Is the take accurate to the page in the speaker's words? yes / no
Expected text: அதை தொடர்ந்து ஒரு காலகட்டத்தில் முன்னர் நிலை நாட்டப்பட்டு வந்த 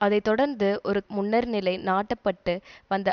no